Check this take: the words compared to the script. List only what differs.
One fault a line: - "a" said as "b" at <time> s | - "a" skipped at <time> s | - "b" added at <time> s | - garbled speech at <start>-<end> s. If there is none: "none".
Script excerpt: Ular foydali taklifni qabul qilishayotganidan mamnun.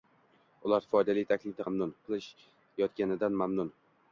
- "qabul" said as "mamnun" at 1.7 s